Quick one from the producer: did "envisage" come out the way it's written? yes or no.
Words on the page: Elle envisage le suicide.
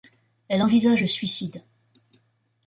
yes